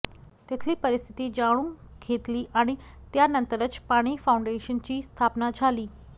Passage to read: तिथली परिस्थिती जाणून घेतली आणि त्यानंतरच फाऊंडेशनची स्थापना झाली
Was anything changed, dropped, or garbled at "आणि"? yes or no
no